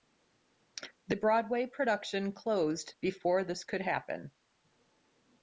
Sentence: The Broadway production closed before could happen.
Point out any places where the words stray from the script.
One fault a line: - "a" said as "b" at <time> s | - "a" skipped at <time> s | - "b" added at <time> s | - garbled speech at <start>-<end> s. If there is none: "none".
- "this" added at 3.4 s